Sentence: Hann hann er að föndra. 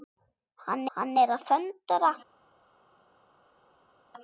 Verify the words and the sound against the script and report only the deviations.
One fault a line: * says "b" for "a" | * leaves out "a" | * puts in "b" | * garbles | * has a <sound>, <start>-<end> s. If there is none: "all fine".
all fine